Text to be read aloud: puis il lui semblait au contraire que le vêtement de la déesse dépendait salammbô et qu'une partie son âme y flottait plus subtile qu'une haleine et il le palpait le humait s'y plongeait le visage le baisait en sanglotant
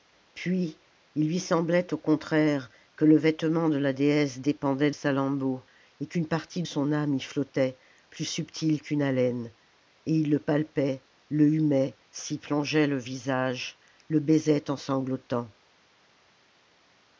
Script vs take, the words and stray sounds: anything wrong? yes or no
no